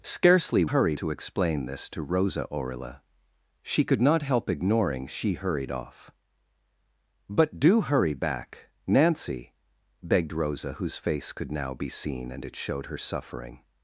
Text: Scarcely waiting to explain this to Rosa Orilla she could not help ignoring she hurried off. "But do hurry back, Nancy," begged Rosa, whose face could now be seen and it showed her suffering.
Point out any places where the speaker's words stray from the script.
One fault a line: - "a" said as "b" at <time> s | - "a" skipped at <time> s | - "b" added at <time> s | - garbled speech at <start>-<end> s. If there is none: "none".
- "waiting" said as "hurry" at 0.6 s